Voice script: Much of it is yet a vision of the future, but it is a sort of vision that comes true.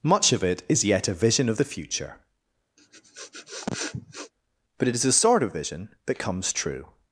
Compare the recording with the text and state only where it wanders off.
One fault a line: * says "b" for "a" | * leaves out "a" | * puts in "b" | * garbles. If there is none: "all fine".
all fine